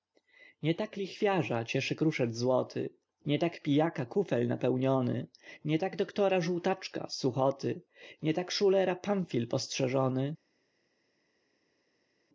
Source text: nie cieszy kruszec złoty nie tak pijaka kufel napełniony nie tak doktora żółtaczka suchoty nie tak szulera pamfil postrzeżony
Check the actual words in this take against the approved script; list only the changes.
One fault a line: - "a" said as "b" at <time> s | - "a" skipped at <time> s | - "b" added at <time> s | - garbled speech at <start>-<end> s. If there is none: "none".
- "tak lichwiarza" added at 0.8 s